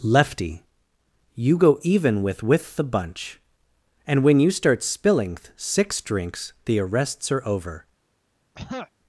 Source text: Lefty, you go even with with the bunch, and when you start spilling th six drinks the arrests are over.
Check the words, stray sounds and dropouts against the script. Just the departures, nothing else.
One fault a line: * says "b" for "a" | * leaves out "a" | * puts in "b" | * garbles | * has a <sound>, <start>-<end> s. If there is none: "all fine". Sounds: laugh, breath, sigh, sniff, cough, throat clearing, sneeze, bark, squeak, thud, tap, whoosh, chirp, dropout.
* has a throat clearing, 8.5-8.9 s